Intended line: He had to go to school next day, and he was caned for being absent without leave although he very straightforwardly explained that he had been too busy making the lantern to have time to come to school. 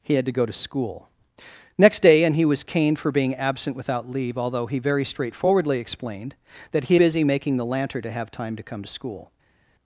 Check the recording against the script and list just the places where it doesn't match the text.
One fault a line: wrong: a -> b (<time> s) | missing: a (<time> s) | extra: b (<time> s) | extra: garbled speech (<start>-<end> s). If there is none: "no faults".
missing: had been too (7.0 s)